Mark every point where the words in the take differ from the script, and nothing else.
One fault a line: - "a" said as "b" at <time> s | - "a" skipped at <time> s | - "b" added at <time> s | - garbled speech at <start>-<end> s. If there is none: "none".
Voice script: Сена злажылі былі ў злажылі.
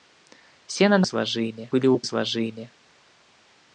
none